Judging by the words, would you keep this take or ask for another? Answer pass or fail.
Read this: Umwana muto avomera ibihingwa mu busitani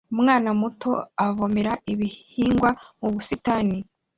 pass